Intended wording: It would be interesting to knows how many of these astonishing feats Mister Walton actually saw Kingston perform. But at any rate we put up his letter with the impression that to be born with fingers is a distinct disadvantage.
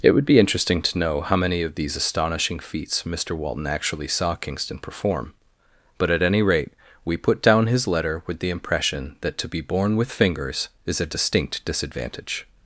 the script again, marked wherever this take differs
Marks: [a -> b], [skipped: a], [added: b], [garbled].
It would be interesting to [knows -> know] how many of these astonishing feats Mister Walton actually saw Kingston perform. But at any rate we put [up -> down] his letter with the impression that to be born with fingers is a distinct disadvantage.